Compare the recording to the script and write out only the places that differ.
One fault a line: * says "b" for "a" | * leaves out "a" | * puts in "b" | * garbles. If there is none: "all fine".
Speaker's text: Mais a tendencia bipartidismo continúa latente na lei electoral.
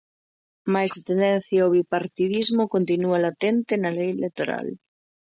* puts in "ao"